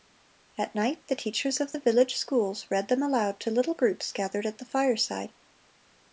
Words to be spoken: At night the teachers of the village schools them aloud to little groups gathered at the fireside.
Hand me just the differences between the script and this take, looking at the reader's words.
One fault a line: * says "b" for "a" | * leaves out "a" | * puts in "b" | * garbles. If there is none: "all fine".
* puts in "read"